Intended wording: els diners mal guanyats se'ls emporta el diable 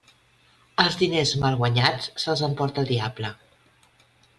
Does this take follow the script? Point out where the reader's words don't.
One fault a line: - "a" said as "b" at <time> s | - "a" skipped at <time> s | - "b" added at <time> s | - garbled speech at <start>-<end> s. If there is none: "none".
none